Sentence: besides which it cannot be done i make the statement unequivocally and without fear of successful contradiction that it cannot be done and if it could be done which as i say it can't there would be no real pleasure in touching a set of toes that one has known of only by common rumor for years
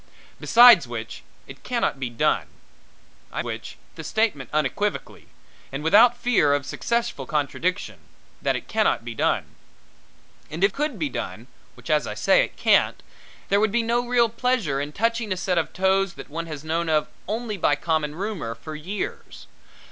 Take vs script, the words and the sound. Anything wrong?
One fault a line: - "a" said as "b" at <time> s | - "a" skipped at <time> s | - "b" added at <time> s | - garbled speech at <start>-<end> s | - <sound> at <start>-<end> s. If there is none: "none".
- "make" said as "which" at 3.4 s
- "it" skipped at 10.7 s